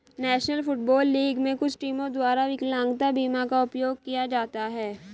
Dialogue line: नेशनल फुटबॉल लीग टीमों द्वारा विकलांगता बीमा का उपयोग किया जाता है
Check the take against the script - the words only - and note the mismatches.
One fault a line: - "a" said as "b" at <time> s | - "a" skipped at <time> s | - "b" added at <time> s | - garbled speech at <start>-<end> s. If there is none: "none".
- "में कुछ" added at 1.4 s